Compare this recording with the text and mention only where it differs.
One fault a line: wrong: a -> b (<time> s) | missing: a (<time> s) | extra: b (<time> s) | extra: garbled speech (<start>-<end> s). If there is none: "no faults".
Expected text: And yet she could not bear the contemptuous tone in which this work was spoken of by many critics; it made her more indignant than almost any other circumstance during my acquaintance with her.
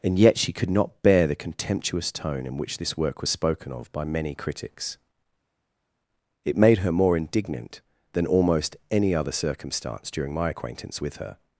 no faults